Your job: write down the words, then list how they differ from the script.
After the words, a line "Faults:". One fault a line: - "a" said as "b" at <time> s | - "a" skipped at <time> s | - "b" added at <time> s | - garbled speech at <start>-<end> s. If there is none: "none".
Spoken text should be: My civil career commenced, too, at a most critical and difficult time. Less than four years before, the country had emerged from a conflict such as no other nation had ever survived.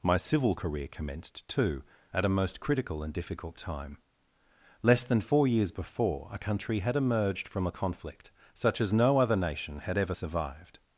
My civil career commenced, too, at a most critical and difficult time. Less than four years before, a country had emerged from a conflict such as no other nation had ever survived.
Faults:
- "the" said as "a" at 6.3 s